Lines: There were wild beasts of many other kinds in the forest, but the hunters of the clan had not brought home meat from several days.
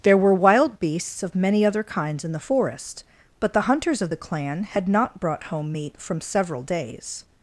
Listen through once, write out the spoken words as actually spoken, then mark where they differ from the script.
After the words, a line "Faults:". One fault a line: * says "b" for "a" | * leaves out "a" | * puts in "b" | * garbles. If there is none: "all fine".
There were wild beasts of many other kinds in the forest, but the hunters of the clan had not brought home meat from several days.
Faults:
all fine